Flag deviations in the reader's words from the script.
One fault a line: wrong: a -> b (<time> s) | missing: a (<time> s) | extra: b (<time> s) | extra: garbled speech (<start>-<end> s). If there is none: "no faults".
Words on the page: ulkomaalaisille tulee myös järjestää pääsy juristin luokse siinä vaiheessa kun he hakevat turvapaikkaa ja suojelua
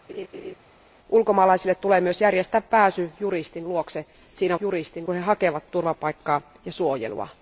wrong: vaiheessa -> juristin (4.6 s)